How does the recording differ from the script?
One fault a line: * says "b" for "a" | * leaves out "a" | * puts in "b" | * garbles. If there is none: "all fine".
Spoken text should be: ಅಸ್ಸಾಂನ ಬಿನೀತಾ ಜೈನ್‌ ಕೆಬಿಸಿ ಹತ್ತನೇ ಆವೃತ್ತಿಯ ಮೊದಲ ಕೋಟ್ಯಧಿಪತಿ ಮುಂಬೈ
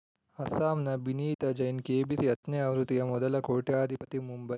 all fine